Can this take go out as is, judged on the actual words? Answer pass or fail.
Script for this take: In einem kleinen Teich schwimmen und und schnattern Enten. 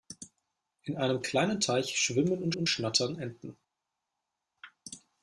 pass